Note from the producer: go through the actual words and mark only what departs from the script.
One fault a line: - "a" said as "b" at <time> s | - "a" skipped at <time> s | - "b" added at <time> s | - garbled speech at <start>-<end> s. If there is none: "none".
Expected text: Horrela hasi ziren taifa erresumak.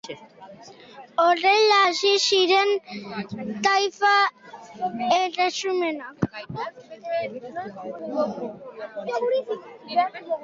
none